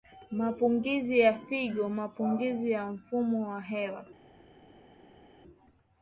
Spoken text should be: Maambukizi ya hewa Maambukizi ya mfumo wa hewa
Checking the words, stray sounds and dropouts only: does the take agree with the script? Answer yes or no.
no